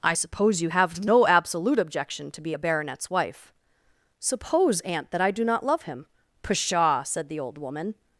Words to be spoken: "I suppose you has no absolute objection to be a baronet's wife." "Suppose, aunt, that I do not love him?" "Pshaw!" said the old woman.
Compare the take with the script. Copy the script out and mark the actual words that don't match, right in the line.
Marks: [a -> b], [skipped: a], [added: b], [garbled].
"I suppose you [has -> have] no absolute objection to be a baronet's wife." "Suppose, aunt, that I do not love him?" "Pshaw!" said the old woman.